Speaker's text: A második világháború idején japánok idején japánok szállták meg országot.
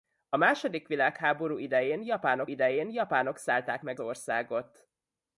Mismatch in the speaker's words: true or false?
false